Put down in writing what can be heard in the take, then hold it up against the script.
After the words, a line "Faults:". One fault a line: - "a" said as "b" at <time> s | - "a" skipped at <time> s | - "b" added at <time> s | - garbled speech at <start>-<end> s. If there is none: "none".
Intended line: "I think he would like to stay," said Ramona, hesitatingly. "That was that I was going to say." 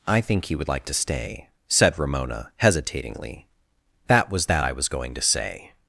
"I think he would like to stay," said Ramona, hesitatingly. "That was that I was going to say."
Faults:
none